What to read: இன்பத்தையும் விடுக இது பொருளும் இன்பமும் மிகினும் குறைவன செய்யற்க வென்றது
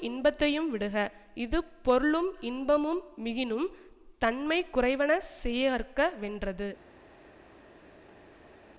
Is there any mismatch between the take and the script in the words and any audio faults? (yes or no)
yes